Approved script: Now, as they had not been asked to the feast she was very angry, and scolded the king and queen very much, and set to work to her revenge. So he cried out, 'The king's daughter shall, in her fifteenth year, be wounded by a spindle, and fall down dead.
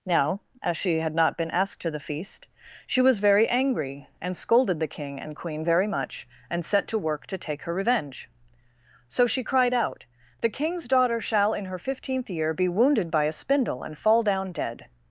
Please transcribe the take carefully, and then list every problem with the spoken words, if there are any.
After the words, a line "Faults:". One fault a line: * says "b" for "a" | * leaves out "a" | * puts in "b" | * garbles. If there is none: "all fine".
Now, as she had not been asked to the feast she was very angry, and scolded the king and queen very much, and set to work to take her revenge. So she cried out, 'The king's daughter shall, in her fifteenth year, be wounded by a spindle, and fall down dead.
Faults:
* says "she" for "they"
* puts in "take"
* says "she" for "he"